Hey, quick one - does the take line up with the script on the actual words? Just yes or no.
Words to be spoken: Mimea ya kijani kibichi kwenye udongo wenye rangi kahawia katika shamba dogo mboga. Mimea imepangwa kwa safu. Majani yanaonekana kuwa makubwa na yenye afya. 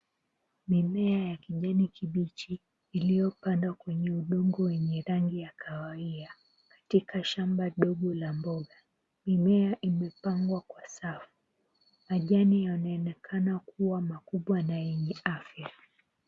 no